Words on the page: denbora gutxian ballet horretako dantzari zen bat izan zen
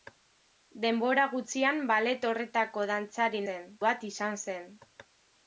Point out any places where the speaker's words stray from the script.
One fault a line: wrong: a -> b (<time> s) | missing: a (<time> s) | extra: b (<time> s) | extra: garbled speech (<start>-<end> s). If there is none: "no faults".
no faults